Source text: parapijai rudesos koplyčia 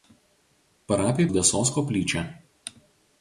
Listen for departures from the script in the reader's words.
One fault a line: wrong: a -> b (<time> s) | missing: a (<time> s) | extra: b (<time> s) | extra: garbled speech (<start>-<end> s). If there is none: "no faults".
no faults